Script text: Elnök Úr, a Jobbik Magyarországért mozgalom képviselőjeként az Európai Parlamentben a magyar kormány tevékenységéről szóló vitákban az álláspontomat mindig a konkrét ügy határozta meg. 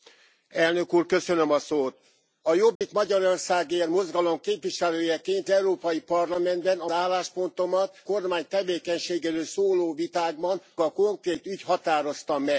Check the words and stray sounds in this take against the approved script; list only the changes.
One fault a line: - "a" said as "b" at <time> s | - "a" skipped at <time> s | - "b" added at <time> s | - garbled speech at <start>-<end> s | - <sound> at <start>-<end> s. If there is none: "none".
- dropout at 2.8-2.8 s
- "az" skipped at 5.5 s
- "magyar" said as "álláspontomat" at 6.9 s
- "az álláspontomat mindig" skipped at 10.6 s